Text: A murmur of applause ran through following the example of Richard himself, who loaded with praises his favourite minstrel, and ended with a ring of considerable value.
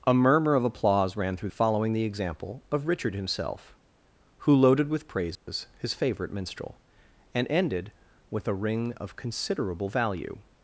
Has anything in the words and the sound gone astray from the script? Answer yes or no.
yes